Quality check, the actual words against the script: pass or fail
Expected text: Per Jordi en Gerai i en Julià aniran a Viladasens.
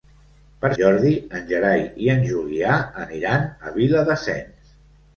pass